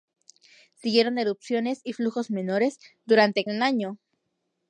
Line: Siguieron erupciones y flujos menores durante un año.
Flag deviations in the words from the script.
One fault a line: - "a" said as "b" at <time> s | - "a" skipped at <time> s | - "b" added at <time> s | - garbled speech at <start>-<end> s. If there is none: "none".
none